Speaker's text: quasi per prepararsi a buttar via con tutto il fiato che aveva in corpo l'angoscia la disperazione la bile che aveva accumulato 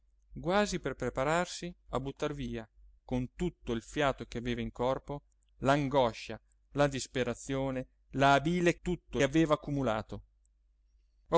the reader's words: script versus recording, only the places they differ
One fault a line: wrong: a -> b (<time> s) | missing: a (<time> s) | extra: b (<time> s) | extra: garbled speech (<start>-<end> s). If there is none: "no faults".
wrong: che -> tutto (8.8 s)